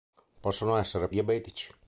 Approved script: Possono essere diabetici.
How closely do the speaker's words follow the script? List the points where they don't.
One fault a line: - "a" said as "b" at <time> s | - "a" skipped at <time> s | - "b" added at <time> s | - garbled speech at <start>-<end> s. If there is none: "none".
none